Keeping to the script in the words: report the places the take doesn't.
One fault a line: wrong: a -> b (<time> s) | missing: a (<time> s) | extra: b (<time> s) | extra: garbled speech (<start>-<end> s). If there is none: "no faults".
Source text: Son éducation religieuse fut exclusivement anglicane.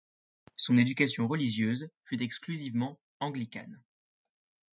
no faults